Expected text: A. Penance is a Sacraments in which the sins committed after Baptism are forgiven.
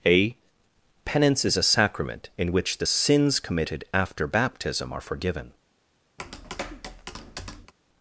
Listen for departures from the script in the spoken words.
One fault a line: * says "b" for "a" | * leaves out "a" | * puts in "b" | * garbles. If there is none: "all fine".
* says "Sacrament" for "Sacraments"